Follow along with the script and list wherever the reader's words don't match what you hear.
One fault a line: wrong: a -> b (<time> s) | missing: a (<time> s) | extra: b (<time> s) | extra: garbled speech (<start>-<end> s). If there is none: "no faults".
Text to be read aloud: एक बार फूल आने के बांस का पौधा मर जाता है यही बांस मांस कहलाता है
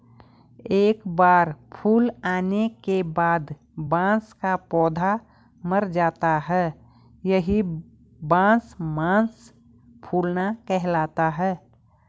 extra: बाद (3.1 s)
extra: फूलना (10.0 s)